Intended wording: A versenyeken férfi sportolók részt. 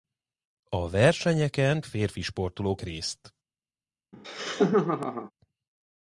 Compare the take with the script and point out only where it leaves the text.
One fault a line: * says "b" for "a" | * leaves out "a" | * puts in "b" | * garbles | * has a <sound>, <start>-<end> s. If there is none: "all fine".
* has a laugh, 4.1-5.3 s